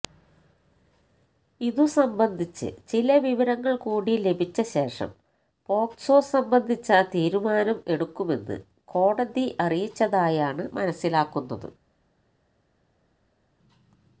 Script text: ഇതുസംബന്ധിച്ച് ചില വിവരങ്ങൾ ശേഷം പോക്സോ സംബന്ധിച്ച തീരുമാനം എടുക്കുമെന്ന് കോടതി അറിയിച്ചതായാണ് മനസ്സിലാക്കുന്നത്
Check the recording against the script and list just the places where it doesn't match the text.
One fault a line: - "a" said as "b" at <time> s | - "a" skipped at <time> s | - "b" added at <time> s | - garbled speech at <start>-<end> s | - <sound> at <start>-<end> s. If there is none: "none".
- "കൂടി ലഭിച്ച" added at 3.7 s